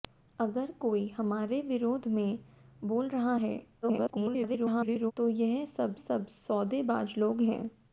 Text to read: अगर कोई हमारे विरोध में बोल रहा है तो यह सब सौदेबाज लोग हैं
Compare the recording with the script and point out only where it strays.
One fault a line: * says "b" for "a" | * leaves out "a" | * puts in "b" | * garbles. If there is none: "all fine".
* garbles
* puts in "सब"